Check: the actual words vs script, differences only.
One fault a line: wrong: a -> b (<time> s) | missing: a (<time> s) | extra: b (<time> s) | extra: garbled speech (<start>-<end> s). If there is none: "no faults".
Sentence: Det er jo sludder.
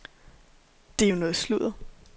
extra: noget (1.2 s)